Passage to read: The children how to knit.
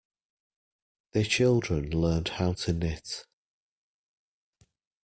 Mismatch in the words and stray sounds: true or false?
true